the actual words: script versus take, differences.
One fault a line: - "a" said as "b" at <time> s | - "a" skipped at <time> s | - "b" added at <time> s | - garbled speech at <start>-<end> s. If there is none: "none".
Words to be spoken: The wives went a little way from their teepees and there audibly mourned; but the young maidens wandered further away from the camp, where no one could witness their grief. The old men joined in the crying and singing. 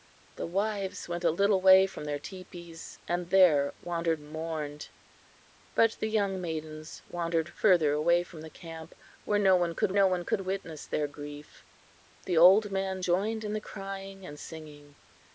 - "audibly" said as "wandered" at 3.8 s
- "no one could" added at 9.9 s